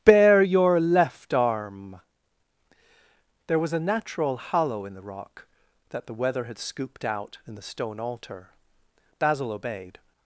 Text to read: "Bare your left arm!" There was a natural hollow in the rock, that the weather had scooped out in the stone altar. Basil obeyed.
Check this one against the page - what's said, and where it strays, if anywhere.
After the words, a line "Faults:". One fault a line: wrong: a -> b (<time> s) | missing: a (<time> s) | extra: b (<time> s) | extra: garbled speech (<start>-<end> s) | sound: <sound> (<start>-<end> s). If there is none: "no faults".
"Bare your left arm!" There was a natural hollow in the rock, that the weather had scooped out in the stone altar. Basil obeyed.
Faults:
no faults